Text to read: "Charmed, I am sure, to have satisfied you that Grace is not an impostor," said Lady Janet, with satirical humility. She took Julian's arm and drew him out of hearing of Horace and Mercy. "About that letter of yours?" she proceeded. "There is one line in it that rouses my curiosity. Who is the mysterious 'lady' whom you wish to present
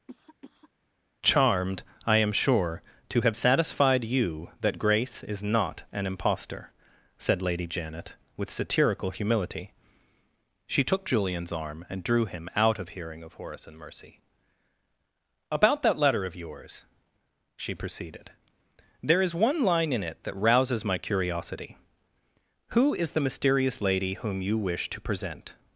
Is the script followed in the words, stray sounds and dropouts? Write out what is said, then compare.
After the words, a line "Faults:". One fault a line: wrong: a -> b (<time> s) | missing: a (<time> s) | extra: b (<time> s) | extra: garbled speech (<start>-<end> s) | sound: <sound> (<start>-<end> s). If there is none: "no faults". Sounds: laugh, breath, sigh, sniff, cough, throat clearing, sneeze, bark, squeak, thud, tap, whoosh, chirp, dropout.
"Charmed, I am sure, to have satisfied you that Grace is not an impostor," said Lady Janet, with satirical humility. She took Julian's arm and drew him out of hearing of Horace and Mercy. "About that letter of yours?" she proceeded. "There is one line in it that rouses my curiosity. Who is the mysterious 'lady' whom you wish to present
Faults:
sound: cough (0.1-0.7 s)